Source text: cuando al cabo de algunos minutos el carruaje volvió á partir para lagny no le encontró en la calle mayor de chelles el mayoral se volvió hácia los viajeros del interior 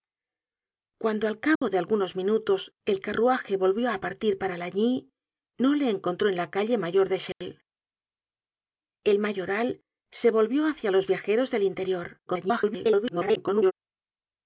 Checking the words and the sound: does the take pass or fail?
fail